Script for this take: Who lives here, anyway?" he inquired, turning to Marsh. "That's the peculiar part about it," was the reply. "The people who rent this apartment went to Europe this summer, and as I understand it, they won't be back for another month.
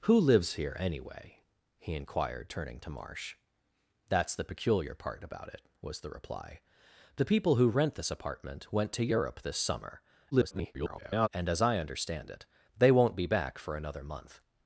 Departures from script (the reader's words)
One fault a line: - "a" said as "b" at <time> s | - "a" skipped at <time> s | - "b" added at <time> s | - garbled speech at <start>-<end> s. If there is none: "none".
- garbled speech at 10.3-11.3 s